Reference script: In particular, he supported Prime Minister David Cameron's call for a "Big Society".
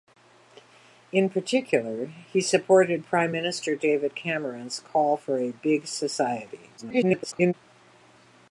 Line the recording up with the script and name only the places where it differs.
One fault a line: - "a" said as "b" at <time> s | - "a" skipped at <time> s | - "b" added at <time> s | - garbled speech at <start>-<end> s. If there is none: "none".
- garbled speech at 6.8-7.5 s